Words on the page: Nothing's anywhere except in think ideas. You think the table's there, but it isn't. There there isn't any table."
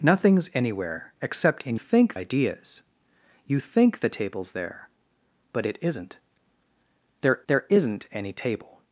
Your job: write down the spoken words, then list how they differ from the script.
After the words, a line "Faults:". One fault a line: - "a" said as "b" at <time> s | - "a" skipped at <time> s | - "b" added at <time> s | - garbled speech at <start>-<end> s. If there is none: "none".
Nothing's anywhere except in think ideas. You think the table's there, but it isn't. There there isn't any table."
Faults:
none